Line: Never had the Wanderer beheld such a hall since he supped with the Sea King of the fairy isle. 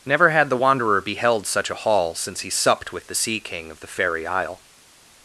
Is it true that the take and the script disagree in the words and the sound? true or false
false